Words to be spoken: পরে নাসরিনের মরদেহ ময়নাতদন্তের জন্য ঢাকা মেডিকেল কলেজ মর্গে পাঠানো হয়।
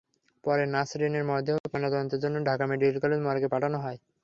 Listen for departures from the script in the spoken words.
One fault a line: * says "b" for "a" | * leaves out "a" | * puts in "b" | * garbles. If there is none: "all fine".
all fine